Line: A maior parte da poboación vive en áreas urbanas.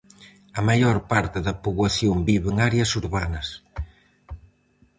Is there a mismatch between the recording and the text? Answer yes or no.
no